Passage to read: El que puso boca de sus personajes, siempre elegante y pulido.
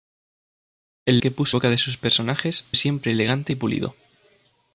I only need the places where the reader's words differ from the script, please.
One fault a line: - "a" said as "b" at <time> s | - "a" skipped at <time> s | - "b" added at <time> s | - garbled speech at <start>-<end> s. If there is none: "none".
none